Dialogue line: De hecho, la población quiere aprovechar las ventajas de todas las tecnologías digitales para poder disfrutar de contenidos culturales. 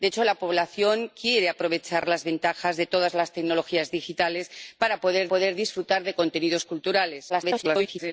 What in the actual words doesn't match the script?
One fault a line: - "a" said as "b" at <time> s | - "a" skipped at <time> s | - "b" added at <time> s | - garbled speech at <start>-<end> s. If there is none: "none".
- "poder" added at 5.3 s
- garbled speech at 7.3-8.1 s